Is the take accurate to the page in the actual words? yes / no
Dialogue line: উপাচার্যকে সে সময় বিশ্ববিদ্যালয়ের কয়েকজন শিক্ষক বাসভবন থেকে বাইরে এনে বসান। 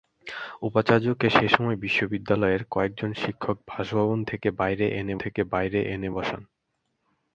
no